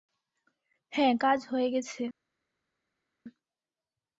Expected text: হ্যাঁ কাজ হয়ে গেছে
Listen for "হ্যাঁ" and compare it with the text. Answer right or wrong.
right